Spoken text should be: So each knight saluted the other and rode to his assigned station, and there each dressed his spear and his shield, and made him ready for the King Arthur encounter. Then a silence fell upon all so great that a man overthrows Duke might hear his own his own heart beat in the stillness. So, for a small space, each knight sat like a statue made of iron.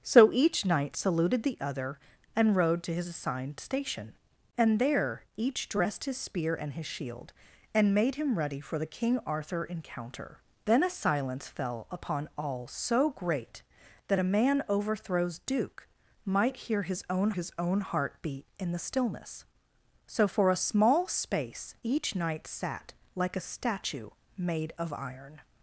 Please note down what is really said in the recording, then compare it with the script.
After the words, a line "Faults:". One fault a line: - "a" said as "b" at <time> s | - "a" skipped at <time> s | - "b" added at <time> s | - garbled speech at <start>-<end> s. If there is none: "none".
So each knight saluted the other and rode to his assigned station, and there each dressed his spear and his shield, and made him ready for the King Arthur encounter. Then a silence fell upon all so great that a man overthrows Duke might hear his own his own heart beat in the stillness. So, for a small space, each knight sat like a statue made of iron.
Faults:
none